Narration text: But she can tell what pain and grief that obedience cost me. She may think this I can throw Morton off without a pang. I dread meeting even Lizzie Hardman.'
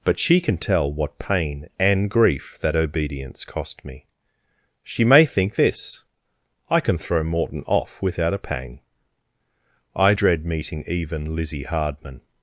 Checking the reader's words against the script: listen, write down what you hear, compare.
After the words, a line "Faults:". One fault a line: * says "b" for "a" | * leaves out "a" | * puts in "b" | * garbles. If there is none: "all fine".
But she can tell what pain and grief that obedience cost me. She may think this I can throw Morton off without a pang. I dread meeting even Lizzie Hardman.'
Faults:
all fine